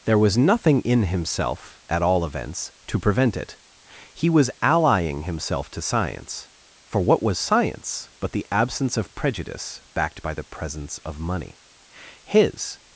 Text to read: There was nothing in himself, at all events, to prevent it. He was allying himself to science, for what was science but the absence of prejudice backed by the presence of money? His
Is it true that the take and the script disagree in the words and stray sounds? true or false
false